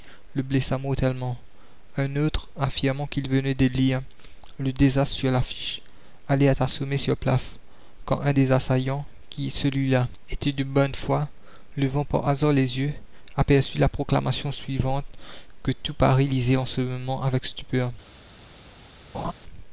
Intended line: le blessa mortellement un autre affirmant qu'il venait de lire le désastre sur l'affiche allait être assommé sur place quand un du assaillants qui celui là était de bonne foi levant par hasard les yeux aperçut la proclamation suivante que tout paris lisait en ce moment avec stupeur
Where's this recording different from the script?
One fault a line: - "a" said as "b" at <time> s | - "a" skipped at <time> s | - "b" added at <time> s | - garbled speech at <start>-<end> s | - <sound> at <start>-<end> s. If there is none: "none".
- "du" said as "des" at 8.3 s
- laugh at 19.1-19.3 s